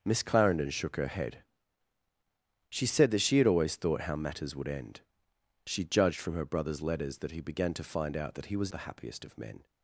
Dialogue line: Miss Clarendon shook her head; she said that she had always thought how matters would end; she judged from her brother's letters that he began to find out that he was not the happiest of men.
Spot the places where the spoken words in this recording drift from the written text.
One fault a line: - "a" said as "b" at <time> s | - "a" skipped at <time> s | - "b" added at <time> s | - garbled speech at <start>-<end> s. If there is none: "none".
- "not" skipped at 8.7 s